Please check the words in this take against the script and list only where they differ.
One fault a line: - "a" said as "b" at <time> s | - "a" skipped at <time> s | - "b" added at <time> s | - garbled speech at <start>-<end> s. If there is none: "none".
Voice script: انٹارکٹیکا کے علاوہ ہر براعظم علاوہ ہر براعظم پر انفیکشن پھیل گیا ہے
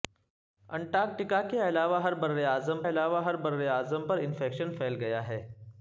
none